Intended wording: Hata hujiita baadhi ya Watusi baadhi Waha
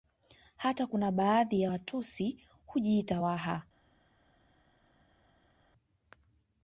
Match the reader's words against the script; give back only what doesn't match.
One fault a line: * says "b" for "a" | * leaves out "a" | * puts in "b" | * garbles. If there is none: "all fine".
* says "kuna" for "hujiita"
* says "hujiita" for "baadhi"